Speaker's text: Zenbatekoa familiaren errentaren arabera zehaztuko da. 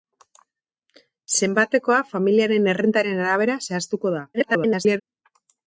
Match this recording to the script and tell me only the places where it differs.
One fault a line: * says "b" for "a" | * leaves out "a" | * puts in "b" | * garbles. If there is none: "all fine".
* garbles